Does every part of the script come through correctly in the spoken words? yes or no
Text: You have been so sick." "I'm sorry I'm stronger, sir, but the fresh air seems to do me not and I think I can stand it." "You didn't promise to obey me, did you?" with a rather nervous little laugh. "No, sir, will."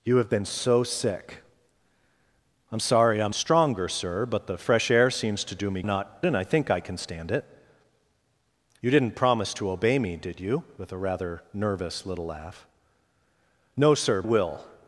yes